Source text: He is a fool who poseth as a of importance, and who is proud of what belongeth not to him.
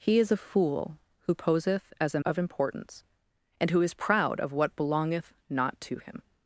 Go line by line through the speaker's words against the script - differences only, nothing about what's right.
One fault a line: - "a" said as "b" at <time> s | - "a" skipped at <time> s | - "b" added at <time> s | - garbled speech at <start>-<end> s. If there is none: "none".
none